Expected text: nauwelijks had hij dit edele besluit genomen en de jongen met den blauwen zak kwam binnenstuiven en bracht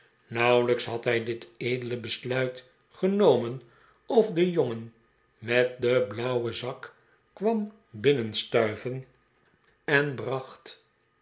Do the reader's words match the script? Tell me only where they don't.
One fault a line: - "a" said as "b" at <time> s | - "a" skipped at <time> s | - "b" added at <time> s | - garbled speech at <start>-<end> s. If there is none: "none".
- "en" said as "of" at 4.0 s